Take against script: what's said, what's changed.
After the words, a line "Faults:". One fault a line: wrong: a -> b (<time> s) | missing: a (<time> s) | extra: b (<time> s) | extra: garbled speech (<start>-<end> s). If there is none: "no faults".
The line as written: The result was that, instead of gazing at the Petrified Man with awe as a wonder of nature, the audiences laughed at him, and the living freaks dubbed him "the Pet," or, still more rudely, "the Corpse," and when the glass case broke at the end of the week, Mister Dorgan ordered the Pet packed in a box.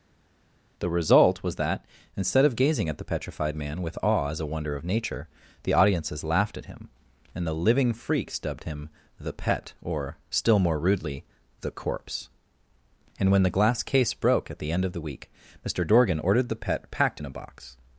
The result was that, instead of gazing at the Petrified Man with awe as a wonder of nature, the audiences laughed at him, and the living freaks dubbed him "the Pet," or, still more rudely, "the Corpse," and when the glass case broke at the end of the week, Mister Dorgan ordered the Pet packed in a box.
Faults:
no faults